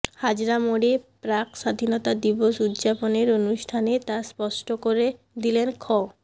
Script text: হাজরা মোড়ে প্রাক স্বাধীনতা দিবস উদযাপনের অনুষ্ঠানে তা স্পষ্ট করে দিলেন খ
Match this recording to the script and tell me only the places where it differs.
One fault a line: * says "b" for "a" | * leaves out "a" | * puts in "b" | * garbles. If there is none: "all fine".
all fine